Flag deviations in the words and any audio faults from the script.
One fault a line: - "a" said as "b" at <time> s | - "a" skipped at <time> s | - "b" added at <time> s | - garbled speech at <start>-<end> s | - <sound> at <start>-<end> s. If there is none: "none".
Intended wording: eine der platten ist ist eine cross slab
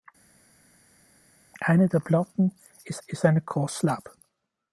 none